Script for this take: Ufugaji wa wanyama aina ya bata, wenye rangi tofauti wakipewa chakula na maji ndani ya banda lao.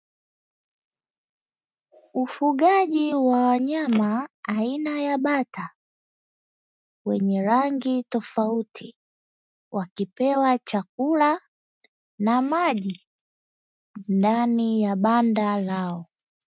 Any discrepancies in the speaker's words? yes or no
no